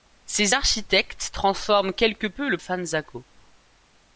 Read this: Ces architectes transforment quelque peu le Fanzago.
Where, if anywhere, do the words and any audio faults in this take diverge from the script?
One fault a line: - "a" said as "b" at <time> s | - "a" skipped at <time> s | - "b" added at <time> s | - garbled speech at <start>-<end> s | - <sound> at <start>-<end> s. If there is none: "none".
none